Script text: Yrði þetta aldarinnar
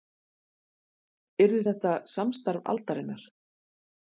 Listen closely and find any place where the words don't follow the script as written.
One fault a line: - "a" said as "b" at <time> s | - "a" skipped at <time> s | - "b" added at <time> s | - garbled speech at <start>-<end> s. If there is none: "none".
- "samstarf" added at 2.1 s